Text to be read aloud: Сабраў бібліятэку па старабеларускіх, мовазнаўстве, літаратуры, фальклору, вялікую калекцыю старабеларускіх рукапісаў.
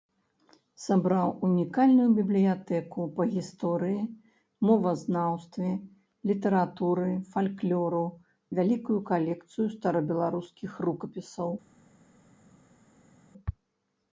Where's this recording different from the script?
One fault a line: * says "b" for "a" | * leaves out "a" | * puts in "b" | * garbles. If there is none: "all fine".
* puts in "унікальную"
* says "гісторыі" for "старабеларускіх"